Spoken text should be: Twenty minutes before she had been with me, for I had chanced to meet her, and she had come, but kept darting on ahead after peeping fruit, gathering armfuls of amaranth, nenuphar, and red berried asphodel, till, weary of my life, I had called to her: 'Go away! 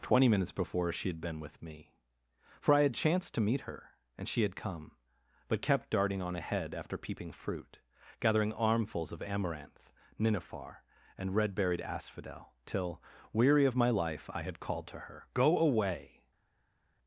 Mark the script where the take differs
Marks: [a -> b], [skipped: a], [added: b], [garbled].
Twenty minutes before she had been with me, for I had chanced to meet her, and she had come, but kept darting on ahead after peeping fruit, gathering armfuls of amaranth, nenuphar, and red berried asphodel, till, weary of my life, I had called to her: 'Go away!